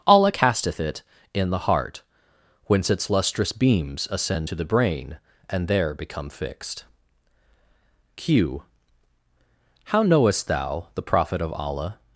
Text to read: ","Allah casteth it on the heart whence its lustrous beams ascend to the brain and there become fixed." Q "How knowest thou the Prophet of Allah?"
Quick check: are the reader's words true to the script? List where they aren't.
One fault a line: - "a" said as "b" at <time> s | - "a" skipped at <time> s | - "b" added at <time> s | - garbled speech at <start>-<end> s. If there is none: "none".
- "on" said as "in" at 1.3 s